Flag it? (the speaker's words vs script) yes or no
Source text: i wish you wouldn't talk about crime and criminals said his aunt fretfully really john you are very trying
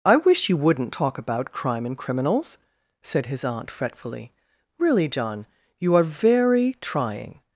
no